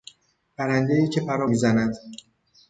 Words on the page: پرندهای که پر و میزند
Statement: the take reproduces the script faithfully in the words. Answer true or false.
true